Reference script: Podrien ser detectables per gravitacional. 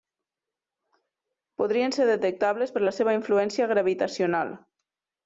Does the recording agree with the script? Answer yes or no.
no